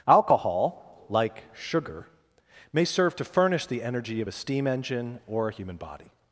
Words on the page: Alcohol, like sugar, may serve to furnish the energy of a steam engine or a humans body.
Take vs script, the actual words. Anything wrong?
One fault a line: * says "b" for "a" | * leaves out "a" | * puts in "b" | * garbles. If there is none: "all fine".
* says "human" for "humans"